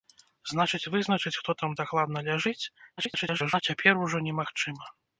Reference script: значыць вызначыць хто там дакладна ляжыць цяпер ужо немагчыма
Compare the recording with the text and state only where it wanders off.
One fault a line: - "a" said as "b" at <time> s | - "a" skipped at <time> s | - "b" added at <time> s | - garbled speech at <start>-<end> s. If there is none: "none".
- garbled speech at 3.0-3.6 s